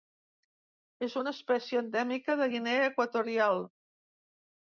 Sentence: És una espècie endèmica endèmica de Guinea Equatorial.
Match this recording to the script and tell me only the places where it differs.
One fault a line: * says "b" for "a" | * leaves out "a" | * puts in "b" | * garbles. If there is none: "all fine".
* leaves out "endèmica"